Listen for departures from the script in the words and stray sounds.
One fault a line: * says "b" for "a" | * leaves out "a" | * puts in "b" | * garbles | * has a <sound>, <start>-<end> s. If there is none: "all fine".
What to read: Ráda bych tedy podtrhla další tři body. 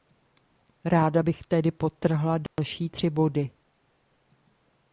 * has a dropout, 2.5-2.6 s